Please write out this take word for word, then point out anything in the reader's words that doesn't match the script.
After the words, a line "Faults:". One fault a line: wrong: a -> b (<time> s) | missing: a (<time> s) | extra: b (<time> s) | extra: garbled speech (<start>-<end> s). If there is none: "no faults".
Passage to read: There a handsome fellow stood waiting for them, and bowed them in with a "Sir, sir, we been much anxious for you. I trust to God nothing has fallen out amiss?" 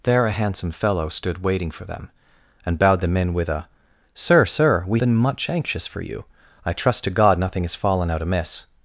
There a handsome fellow stood waiting for them, and bowed them in with a "Sir, sir, we been much anxious for you. I trust to God nothing has fallen out amiss?"
Faults:
no faults